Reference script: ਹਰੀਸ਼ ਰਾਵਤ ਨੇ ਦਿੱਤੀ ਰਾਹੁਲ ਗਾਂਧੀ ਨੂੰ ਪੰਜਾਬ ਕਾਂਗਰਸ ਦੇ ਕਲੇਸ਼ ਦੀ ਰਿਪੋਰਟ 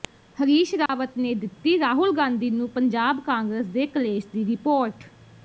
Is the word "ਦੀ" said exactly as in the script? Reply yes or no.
yes